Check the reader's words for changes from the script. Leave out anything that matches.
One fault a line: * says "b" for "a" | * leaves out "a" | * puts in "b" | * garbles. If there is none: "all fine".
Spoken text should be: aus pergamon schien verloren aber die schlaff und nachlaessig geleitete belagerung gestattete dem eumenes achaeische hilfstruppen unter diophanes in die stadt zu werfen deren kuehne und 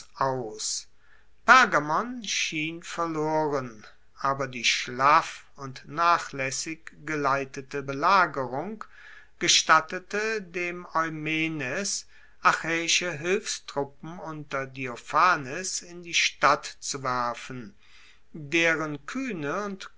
all fine